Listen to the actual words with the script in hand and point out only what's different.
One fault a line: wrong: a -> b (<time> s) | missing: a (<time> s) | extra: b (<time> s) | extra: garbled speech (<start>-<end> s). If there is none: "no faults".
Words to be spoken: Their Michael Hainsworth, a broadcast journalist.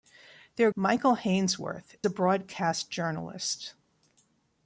no faults